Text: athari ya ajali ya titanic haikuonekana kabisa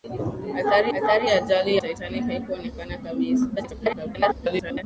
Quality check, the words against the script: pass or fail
fail